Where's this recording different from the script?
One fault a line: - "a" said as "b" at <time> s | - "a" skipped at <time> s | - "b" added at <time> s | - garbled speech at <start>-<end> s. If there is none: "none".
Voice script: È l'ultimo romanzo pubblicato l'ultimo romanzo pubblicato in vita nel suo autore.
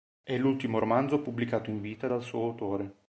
- "l'ultimo romanzo pubblicato" skipped at 1.7 s
- "nel" said as "dal" at 2.0 s